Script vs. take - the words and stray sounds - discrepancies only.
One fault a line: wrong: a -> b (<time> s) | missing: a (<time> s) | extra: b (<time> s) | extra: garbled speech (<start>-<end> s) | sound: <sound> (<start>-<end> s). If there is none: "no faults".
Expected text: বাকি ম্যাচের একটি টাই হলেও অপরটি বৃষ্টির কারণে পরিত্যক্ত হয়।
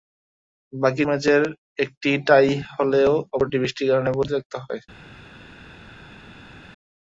no faults